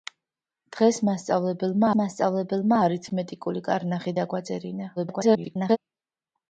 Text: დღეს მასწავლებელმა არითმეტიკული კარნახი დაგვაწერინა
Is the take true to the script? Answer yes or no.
no